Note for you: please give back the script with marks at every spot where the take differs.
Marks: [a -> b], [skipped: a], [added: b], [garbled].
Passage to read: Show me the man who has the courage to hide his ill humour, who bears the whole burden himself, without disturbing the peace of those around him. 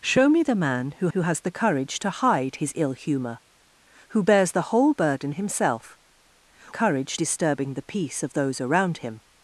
Show me the man who [added: who] has the courage to hide his ill humour, who bears the whole burden himself, [without -> courage] disturbing the peace of those around him.